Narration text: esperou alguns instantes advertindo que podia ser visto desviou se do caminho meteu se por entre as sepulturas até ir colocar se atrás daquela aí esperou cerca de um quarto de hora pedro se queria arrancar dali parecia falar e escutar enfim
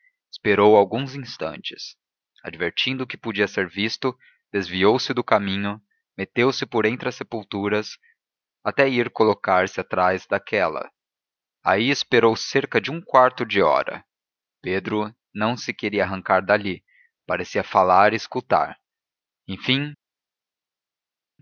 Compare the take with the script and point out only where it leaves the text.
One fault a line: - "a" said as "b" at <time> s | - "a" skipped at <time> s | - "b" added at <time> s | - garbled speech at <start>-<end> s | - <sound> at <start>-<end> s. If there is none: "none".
- "não" added at 15.3 s